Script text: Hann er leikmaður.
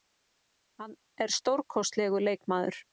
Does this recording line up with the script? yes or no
no